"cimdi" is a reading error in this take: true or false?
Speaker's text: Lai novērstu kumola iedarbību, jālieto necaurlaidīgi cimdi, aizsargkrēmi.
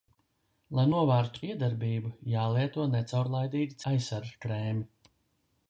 true